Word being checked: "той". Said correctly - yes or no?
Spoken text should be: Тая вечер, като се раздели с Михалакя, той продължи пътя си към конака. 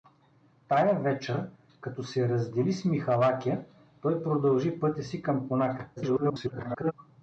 yes